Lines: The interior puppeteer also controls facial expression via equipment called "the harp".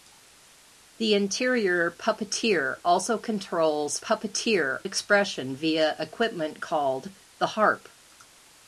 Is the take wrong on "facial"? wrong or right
wrong